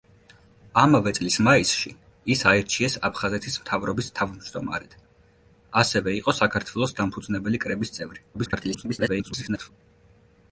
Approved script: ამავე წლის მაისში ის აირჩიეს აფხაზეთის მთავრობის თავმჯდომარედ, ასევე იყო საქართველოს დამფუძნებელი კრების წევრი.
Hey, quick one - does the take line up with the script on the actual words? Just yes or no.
no